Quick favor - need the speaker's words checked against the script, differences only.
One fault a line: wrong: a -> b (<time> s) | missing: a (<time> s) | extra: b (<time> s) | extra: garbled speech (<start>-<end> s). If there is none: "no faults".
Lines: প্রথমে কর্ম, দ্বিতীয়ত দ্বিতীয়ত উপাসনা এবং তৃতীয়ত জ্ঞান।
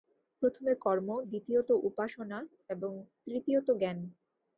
missing: দ্বিতীয়ত (1.7 s)